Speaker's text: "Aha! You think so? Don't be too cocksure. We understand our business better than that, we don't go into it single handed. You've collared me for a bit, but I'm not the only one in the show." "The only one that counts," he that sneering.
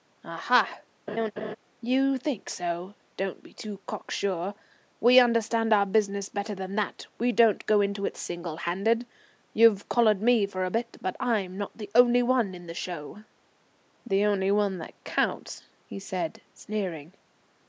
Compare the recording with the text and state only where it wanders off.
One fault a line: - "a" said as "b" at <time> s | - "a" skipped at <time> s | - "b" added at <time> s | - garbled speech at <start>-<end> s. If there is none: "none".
- "that" said as "said" at 16.0 s